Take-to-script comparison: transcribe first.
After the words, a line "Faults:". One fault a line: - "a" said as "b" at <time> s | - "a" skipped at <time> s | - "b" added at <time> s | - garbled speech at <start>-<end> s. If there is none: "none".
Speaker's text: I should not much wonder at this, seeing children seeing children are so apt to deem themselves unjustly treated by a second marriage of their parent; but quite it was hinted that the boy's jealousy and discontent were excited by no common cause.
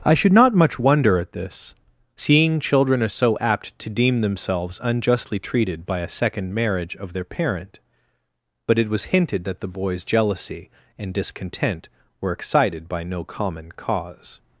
I should not much wonder at this, seeing children are so apt to deem themselves unjustly treated by a second marriage of their parent; but it was hinted that the boy's jealousy and discontent were excited by no common cause.
Faults:
- "seeing children" skipped at 3.0 s
- "quite" skipped at 8.8 s